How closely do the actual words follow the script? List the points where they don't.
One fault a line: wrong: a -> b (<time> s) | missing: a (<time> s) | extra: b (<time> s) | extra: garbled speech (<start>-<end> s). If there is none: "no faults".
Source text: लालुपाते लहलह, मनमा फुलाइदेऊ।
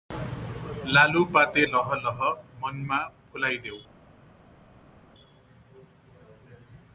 no faults